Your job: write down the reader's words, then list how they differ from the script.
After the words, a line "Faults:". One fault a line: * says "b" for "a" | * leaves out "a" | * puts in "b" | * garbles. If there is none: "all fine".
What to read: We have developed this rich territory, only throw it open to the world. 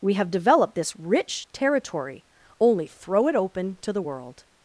We have developed this rich territory, only throw it open to the world.
Faults:
all fine